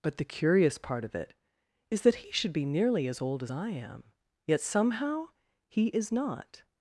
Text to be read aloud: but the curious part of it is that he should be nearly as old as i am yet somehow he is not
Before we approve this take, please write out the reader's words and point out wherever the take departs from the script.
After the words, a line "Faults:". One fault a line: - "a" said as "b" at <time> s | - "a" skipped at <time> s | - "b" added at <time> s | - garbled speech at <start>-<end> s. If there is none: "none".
but the curious part of it is that he should be nearly as old as i am yet somehow he is not
Faults:
none